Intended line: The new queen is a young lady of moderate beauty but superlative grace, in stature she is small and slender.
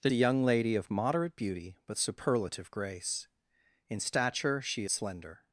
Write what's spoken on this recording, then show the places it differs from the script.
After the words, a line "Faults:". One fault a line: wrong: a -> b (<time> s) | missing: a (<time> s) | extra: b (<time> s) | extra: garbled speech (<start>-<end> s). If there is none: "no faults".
The a young lady of moderate beauty but superlative grace, in stature she slender.
Faults:
missing: new queen is (0.1 s)
missing: is small and (4.8 s)